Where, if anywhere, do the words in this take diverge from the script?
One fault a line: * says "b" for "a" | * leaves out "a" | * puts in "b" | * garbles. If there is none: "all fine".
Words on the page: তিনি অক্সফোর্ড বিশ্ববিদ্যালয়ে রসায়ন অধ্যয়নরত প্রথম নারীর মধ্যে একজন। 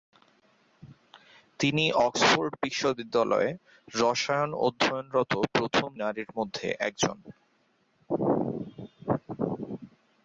all fine